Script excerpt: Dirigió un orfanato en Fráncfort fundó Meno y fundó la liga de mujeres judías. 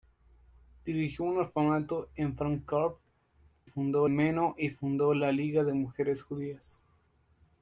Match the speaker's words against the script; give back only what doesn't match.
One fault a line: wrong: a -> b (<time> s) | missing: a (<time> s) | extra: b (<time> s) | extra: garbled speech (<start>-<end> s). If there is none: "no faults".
no faults